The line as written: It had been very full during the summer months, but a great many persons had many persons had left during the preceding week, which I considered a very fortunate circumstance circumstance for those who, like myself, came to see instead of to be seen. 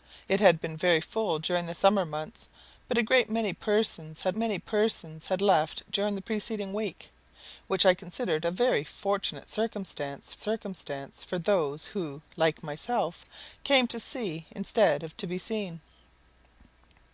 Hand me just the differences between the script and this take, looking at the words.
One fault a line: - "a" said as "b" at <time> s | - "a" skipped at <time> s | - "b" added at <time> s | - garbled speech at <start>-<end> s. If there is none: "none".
none